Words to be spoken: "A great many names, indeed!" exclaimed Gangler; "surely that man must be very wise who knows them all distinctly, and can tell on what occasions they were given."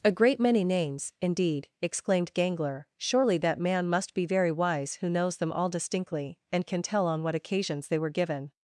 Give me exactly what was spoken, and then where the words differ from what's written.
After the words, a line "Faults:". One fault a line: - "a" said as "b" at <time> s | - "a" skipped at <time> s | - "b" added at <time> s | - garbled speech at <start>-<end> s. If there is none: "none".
"A great many names, indeed!" exclaimed Gangler; "surely that man must be very wise who knows them all distinctly, and can tell on what occasions they were given."
Faults:
none